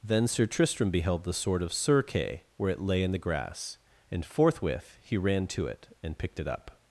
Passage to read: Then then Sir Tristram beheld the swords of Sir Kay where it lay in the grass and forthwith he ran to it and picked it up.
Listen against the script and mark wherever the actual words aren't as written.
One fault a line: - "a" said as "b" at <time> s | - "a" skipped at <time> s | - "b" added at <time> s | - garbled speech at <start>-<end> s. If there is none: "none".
- "then" skipped at 0.3 s
- "swords" said as "sword" at 1.3 s